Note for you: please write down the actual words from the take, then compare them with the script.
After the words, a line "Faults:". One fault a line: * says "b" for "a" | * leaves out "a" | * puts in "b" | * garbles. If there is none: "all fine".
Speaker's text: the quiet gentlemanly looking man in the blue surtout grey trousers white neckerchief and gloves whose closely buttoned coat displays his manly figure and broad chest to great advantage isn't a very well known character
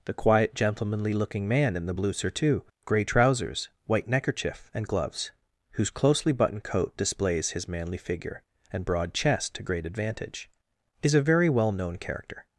the quiet gentlemanly looking man in the blue surtout grey trousers white neckerchief and gloves whose closely buttoned coat displays his manly figure and broad chest to great advantage is a very well known character
Faults:
* says "is" for "isn't"